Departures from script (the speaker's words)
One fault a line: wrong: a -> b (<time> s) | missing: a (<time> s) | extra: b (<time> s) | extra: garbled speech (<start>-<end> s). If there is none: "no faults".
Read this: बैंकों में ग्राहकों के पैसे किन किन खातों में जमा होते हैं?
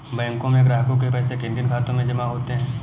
no faults